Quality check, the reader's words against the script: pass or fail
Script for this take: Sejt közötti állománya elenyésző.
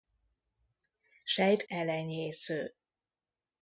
fail